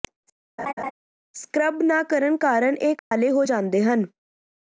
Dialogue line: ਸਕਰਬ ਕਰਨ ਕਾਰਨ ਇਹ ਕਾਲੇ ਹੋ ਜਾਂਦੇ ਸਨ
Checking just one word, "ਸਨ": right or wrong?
wrong